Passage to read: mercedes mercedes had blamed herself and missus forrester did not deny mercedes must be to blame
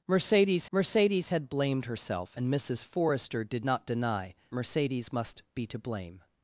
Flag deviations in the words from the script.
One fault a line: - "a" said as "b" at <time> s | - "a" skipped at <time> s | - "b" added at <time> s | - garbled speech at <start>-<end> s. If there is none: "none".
none